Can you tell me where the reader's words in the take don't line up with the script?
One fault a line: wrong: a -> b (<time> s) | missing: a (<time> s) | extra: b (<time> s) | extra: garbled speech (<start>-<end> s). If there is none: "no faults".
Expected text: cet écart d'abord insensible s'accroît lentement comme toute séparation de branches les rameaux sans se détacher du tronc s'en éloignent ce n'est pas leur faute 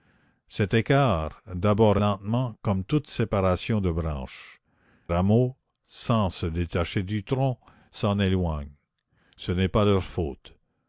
missing: insensible s'accroît (2.0 s)
missing: les (4.6 s)